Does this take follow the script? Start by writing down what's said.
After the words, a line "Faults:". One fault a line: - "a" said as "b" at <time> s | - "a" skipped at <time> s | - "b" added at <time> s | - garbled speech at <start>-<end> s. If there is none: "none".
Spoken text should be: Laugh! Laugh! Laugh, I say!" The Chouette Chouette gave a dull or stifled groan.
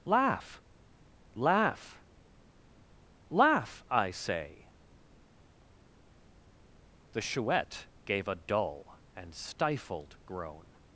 Laugh! Laugh! Laugh, I say!" The Chouette gave a dull and stifled groan.
Faults:
- "Chouette" skipped at 7.9 s
- "or" said as "and" at 9.2 s